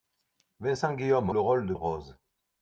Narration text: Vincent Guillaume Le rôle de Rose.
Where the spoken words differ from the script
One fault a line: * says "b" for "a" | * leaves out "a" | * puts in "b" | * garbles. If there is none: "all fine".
all fine